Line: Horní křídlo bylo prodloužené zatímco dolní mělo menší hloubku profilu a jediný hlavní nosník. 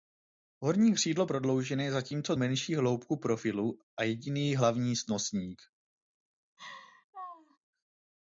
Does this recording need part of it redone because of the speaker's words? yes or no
yes